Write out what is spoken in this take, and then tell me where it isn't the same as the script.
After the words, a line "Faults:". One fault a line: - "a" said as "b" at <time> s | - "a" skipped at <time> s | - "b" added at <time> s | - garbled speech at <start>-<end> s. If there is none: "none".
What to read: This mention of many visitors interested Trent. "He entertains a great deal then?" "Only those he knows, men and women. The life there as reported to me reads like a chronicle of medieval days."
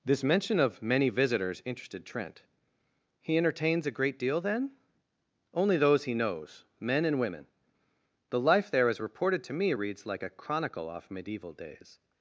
This mention of many visitors interested Trent. "He entertains a great deal then?" "Only those he knows, men and women. The life there as reported to me reads like a chronicle off medieval days."
Faults:
- "of" said as "off" at 10.9 s